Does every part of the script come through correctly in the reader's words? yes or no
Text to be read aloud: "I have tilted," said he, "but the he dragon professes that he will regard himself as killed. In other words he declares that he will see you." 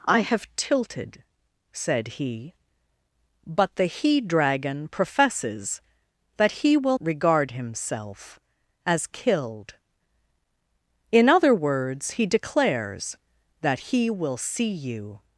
yes